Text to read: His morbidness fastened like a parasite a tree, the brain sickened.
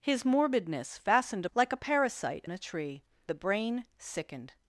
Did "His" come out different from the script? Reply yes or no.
no